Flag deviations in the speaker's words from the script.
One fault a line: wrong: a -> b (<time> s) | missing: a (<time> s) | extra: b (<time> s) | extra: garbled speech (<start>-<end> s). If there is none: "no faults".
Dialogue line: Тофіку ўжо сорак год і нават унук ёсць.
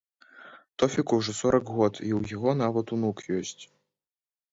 extra: ў яго (2.2 s)